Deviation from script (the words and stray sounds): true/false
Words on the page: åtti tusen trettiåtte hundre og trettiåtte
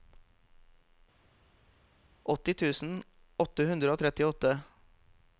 true